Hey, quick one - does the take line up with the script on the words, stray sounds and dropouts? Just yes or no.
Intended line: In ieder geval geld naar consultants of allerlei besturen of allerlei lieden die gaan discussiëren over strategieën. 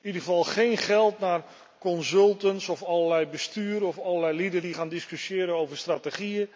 no